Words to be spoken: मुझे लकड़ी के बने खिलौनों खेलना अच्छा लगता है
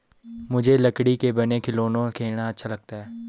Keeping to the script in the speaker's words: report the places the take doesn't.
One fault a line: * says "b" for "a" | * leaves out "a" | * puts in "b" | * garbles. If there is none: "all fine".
all fine